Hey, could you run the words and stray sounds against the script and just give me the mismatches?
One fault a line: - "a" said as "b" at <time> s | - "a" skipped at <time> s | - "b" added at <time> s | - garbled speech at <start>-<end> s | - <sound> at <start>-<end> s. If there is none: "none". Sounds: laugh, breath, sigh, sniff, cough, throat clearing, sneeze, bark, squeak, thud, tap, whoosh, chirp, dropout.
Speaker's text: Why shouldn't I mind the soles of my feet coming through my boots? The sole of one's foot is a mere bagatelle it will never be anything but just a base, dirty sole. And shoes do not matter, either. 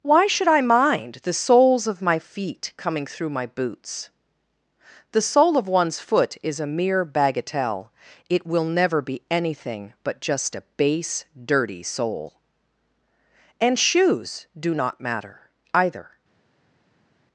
- "shouldn't" said as "should" at 0.2 s